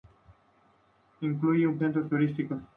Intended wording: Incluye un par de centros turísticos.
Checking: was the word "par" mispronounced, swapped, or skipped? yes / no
yes